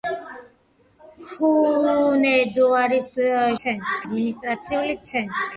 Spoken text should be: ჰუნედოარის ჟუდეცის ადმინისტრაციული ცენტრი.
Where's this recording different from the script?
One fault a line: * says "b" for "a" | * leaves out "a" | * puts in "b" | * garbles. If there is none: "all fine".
* says "ცენტრი" for "ჟუდეცის"